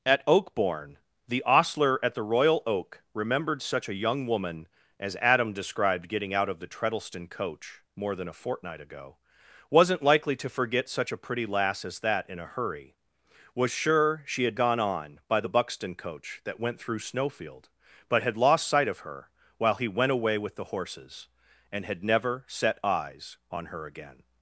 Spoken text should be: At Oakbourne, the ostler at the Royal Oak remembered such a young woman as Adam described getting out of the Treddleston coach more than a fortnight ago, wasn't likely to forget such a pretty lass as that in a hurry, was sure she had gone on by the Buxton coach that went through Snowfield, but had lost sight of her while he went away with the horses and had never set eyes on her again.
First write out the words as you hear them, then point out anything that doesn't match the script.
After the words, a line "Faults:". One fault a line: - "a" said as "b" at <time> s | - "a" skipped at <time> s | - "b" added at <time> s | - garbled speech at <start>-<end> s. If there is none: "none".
At Oakbourne, the ostler at the Royal Oak remembered such a young woman as Adam described getting out of the Treddleston coach more than a fortnight ago, wasn't likely to forget such a pretty lass as that in a hurry, was sure she had gone on by the Buxton coach that went through Snowfield, but had lost sight of her while he went away with the horses and had never set eyes on her again.
Faults:
none